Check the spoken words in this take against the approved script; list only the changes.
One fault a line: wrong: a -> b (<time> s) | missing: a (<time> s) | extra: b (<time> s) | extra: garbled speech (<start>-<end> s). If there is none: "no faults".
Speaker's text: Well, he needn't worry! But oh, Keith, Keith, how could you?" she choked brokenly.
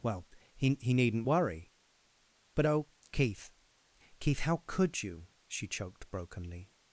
extra: he (0.8 s)